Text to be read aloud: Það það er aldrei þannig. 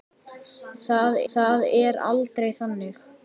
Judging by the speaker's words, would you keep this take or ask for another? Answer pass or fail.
pass